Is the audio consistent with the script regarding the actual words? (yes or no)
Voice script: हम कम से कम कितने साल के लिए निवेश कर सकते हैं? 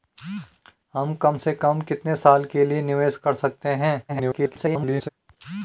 no